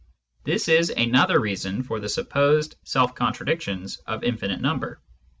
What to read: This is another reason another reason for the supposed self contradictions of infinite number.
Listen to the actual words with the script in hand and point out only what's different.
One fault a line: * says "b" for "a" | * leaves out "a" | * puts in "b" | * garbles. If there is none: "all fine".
* leaves out "another reason"